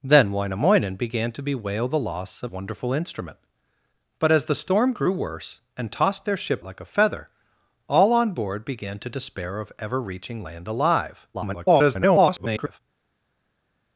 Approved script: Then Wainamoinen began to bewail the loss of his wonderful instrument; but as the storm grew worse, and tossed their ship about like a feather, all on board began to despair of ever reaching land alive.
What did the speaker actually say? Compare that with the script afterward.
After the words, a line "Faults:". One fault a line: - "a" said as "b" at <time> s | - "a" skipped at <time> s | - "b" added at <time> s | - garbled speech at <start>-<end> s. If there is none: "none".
Then Wainamoinen began to bewail the loss of wonderful instrument; but as the storm grew worse, and tossed their ship like a feather, all on board began to despair of ever reaching land alive. [garbled]
Faults:
- "his" skipped at 2.5 s
- "about" skipped at 6.6 s
- garbled speech at 11.3-12.8 s